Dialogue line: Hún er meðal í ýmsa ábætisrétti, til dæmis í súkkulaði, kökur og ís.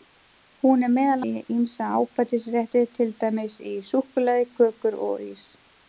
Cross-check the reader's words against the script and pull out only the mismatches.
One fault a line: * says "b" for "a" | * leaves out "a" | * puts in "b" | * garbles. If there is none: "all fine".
all fine